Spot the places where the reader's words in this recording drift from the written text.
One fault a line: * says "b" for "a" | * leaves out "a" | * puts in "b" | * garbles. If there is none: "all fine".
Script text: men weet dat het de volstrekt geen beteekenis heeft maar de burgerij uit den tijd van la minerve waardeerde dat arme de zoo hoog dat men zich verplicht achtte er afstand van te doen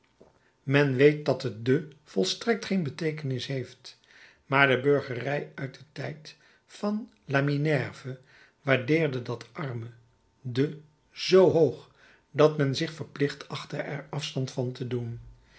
all fine